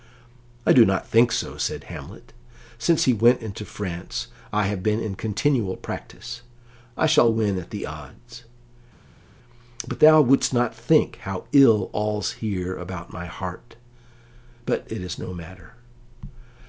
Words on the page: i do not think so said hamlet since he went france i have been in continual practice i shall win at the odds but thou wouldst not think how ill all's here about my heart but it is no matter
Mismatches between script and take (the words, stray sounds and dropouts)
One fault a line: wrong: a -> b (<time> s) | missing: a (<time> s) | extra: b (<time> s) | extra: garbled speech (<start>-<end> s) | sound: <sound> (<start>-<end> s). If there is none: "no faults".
extra: into (3.4 s)